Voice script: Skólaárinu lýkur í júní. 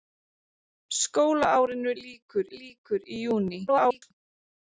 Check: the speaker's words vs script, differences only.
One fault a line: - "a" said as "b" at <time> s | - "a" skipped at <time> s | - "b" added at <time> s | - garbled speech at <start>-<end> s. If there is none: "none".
- "lýkur" added at 2.6 s
- garbled speech at 3.7-4.1 s